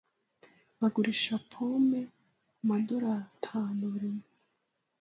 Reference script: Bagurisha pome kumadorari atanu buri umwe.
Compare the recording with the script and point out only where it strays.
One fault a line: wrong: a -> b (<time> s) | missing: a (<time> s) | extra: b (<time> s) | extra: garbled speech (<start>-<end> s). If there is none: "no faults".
no faults